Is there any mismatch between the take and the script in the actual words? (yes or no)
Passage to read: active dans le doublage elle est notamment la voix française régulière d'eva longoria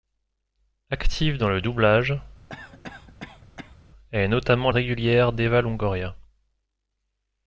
yes